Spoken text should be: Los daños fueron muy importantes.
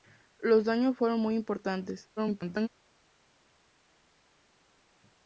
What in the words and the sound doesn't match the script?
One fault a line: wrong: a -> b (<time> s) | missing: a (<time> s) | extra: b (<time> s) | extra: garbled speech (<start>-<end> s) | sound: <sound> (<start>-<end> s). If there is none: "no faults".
extra: garbled speech (2.2-2.7 s)